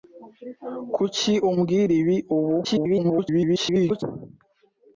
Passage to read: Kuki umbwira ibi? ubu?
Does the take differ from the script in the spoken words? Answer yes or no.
yes